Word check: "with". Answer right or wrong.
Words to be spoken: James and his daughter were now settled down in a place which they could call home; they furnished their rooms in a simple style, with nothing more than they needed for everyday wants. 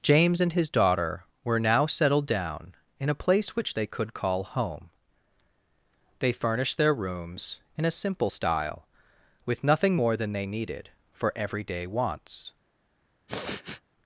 right